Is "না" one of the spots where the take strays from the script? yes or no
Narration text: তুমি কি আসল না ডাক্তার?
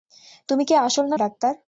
no